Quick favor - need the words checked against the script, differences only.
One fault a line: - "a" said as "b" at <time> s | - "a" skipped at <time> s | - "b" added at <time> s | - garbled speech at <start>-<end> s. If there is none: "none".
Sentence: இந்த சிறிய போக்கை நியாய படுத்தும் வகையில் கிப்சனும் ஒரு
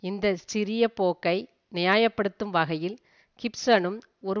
none